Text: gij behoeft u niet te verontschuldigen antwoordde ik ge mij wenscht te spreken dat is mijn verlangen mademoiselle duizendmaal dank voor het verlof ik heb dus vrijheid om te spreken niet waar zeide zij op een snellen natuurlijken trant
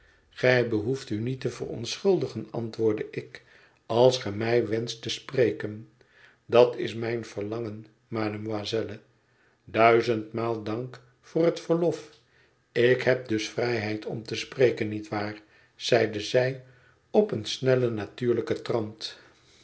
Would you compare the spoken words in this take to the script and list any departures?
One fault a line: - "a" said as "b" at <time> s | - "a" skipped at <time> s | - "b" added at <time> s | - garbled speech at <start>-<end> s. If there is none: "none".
- "als" added at 3.9 s